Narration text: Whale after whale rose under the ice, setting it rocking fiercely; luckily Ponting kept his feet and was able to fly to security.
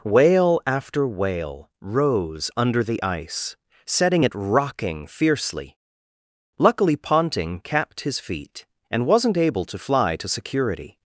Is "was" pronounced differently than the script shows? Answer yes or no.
yes